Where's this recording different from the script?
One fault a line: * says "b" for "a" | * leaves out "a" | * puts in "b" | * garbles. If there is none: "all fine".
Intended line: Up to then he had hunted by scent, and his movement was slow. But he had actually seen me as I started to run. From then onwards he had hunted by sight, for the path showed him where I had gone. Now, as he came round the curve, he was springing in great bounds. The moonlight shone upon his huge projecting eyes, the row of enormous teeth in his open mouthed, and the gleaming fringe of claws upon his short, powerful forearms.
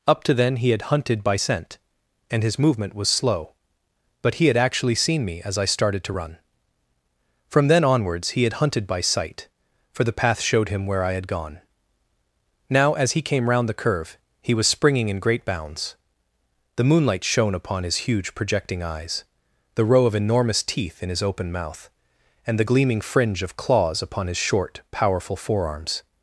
* says "mouth" for "mouthed"